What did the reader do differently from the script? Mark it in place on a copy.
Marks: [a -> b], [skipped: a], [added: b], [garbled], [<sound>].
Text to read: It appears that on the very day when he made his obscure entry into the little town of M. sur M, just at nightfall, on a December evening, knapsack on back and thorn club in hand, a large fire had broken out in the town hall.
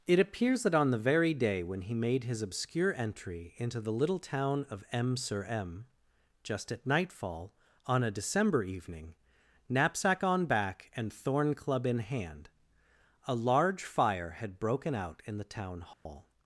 It appears that on the very day when he made his obscure entry into the little town of M. sur M, just at nightfall, on a December evening, knapsack on back and thorn club in hand, a large fire had broken out in the town hall. [dropout]